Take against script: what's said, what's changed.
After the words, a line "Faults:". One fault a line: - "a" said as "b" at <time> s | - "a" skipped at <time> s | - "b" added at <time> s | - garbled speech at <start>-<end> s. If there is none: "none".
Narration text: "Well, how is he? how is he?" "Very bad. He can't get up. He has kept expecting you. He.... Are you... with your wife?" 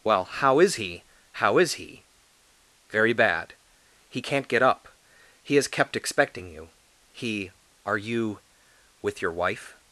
"Well, how is he? how is he?" "Very bad. He can't get up. He has kept expecting you. He.... Are you... with your wife?"
Faults:
none